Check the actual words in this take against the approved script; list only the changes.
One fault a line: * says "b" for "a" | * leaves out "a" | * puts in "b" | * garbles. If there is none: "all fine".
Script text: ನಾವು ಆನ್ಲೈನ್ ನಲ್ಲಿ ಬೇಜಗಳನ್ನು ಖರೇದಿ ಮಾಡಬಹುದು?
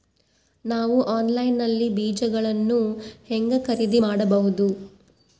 * puts in "ಹೆಂಗ"